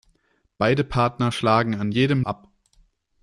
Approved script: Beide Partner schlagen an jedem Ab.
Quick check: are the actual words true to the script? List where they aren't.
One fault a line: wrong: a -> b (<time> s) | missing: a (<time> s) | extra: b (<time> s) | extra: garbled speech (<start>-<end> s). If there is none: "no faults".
no faults